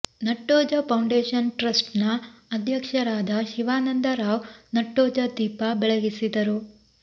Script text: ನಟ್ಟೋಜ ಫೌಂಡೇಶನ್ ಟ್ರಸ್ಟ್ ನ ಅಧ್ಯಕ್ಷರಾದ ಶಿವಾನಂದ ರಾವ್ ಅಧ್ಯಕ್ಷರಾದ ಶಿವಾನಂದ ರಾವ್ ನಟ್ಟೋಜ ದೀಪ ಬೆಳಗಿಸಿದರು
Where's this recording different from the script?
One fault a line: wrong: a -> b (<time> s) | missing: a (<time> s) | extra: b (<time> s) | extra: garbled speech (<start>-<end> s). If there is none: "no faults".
missing: ಅಧ್ಯಕ್ಷರಾದ ಶಿವಾನಂದ ರಾವ್ (4.5 s)